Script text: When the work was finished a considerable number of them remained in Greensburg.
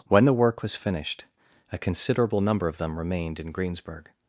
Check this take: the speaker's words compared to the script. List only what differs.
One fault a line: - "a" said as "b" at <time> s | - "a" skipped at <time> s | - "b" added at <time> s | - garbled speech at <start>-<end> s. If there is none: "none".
none